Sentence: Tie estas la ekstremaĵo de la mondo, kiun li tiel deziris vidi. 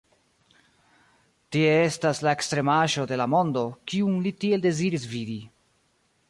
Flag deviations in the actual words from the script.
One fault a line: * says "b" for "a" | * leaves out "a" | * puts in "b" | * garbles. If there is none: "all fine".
all fine